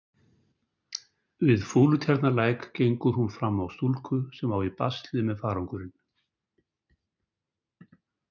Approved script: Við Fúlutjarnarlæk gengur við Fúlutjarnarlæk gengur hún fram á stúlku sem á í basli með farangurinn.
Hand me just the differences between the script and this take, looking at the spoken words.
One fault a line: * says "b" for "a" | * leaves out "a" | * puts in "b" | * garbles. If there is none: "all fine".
* leaves out "við Fúlutjarnarlæk gengur"